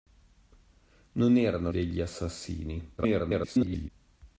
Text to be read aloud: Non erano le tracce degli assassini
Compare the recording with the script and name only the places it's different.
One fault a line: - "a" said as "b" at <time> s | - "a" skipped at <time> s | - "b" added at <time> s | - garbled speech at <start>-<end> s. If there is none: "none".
- "le tracce" skipped at 1.7 s
- garbled speech at 3.0-3.9 s